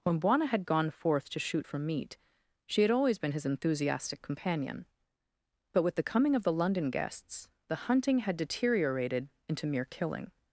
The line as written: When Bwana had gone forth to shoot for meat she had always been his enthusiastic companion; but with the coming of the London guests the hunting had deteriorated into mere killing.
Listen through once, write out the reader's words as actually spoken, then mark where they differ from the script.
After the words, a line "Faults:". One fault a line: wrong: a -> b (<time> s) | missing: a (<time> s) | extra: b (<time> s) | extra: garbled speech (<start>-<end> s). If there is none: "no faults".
When Bwana had gone forth to shoot for meat she had always been his enthusiastic companion; but with the coming of the London guests the hunting had deteriorated into mere killing.
Faults:
no faults